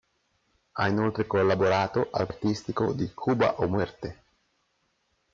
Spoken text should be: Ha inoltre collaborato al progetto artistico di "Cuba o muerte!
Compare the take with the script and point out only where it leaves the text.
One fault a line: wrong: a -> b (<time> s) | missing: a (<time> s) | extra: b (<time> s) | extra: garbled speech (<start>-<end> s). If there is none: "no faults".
missing: progetto (2.3 s)